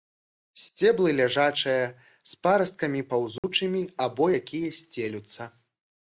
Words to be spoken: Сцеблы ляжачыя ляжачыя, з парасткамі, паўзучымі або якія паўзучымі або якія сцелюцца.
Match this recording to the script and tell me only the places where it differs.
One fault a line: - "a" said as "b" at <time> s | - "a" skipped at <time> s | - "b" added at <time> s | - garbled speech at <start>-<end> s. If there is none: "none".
- "ляжачыя" skipped at 1.8 s
- "паўзучымі або якія" skipped at 4.7 s